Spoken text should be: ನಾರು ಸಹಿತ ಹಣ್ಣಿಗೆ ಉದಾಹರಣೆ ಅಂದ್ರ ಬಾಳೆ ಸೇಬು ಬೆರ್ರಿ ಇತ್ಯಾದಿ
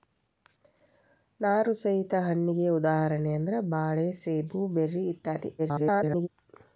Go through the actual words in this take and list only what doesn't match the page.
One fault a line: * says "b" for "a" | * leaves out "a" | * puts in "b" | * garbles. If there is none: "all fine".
* garbles